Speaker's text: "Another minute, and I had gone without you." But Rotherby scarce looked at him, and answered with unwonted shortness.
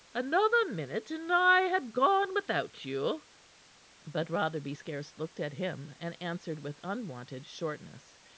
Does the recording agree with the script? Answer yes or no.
yes